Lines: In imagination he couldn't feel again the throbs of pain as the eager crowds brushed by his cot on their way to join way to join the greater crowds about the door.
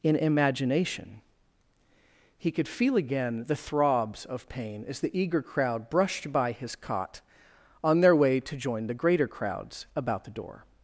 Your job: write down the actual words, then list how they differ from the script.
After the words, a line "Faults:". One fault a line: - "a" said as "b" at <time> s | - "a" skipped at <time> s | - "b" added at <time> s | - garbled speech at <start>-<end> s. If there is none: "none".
In imagination he could feel again the throbs of pain as the eager crowd brushed by his cot on their way to join the greater crowds about the door.
Faults:
- "couldn't" said as "could" at 2.5 s
- "crowds" said as "crowd" at 5.4 s
- "way to join" skipped at 8.9 s